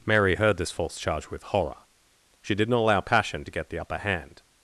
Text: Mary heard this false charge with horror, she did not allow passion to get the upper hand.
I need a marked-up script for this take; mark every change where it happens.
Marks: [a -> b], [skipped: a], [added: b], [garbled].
Mary heard this false charge with horror, she did not allow passion to get the upper hand.